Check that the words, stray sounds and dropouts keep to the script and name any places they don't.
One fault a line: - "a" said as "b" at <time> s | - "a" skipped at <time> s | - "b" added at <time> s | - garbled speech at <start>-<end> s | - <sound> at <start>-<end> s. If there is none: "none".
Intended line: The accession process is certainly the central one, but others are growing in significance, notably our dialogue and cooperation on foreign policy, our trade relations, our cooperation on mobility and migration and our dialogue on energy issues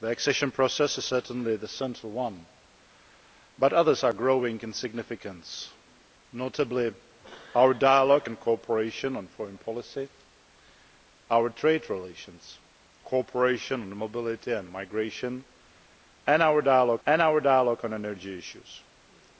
- "our" skipped at 12.6 s
- "and our dialogue" added at 17.1 s